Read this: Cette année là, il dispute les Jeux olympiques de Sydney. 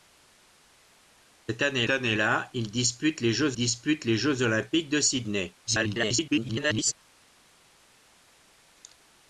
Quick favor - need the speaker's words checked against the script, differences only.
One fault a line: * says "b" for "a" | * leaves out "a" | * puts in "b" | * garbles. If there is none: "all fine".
* puts in "année"
* puts in "dispute les Jeux"
* garbles